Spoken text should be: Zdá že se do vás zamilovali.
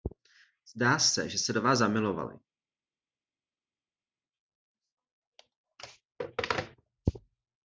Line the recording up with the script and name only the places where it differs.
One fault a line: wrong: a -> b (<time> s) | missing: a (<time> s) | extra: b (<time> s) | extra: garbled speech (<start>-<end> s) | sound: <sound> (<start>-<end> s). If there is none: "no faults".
extra: se (1.0 s)